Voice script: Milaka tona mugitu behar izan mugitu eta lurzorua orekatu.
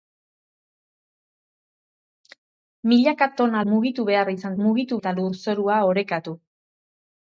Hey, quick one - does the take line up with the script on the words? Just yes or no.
yes